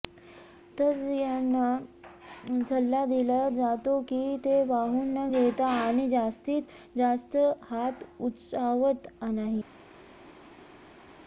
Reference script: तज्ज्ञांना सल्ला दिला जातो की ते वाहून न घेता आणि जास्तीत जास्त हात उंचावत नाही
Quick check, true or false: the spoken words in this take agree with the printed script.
true